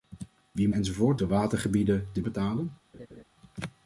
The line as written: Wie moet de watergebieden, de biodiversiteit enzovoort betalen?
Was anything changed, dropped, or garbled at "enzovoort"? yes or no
yes